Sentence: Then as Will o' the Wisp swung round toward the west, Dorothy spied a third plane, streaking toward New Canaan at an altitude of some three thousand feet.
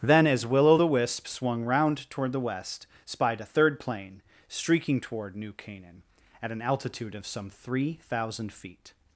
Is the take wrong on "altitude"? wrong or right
right